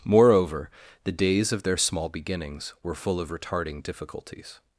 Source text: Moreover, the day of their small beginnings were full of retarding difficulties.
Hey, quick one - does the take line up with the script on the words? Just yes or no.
no